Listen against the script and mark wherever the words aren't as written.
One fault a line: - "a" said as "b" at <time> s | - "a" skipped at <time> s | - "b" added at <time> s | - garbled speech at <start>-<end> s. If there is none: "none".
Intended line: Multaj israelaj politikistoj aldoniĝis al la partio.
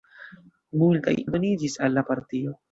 - "israelaj politikistoj" skipped at 1.1 s